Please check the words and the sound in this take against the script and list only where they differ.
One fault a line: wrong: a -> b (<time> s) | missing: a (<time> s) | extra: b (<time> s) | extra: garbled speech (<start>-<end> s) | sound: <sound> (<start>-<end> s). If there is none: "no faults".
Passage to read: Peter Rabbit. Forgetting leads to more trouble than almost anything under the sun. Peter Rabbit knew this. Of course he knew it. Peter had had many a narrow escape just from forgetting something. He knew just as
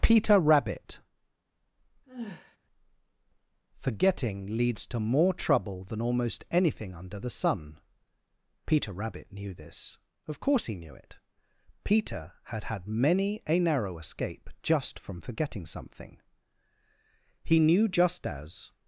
sound: sigh (2.1-2.6 s)